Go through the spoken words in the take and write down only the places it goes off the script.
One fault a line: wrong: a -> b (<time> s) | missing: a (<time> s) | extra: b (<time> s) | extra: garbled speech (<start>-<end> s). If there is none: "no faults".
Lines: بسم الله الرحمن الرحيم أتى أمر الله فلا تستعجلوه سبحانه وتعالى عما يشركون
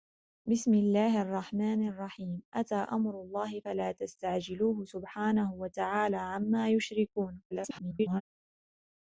extra: garbled speech (7.5-8.2 s)